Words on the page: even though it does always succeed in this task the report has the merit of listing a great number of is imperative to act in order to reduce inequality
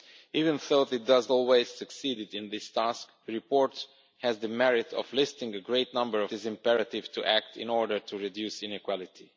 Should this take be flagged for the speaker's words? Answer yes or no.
no